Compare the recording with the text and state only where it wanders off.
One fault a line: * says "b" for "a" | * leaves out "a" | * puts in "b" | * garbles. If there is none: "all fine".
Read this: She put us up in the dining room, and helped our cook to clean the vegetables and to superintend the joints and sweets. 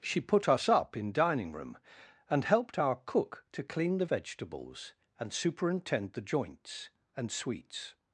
* leaves out "the"
* leaves out "to"